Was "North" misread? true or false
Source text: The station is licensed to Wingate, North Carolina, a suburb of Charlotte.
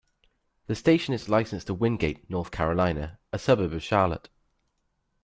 false